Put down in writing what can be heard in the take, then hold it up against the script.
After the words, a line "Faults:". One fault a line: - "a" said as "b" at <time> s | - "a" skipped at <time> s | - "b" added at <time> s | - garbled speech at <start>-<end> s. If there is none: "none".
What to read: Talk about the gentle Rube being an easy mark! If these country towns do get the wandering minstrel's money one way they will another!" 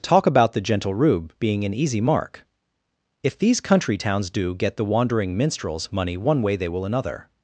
Talk about the gentle Rube being an easy mark! If these country towns do get the wandering minstrel's money one way they will another!"
Faults:
none